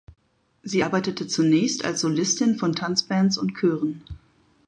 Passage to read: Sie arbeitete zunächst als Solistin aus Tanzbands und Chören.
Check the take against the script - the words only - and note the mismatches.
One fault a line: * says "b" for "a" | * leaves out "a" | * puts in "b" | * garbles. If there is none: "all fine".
* says "von" for "aus"